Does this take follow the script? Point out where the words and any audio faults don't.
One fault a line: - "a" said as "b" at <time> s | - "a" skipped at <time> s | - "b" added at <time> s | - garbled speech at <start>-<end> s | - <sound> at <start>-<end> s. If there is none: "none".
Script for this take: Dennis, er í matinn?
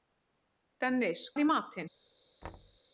- thud at 2.4-2.8 s